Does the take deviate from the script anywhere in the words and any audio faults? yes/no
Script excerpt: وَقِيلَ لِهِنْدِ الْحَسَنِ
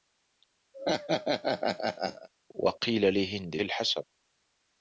yes